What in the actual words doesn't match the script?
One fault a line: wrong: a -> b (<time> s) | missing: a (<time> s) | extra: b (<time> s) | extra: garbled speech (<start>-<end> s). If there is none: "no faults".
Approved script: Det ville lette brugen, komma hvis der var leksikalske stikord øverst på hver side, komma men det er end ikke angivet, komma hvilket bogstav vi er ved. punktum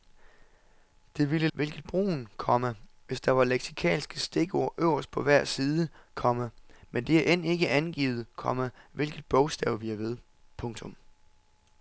wrong: lette -> hvilket (1.5 s)